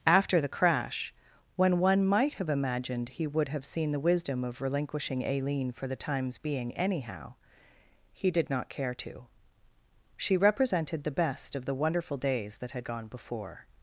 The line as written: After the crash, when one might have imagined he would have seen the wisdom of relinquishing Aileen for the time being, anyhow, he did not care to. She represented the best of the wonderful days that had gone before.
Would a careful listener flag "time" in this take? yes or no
yes